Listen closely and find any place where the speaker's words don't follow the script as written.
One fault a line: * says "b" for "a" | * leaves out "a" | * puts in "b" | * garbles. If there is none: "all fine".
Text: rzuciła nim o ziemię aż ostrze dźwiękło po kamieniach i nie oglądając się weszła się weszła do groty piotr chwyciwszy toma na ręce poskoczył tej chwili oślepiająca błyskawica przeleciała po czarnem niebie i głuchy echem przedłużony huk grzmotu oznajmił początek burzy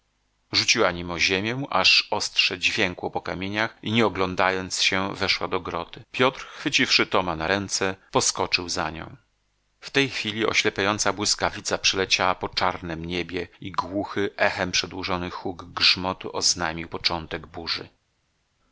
* leaves out "się weszła"
* puts in "za nią w"